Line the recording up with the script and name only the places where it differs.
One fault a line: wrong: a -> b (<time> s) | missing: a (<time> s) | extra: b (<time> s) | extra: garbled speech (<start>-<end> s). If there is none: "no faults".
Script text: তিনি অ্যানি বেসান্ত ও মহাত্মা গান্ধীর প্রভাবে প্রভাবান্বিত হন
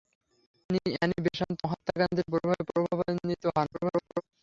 missing: ও (1.6 s)
extra: garbled speech (3.7-4.2 s)